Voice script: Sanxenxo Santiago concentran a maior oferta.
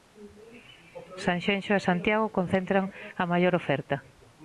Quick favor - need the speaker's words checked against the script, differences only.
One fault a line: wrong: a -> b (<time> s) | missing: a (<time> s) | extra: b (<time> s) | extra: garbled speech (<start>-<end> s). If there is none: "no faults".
extra: e (1.8 s)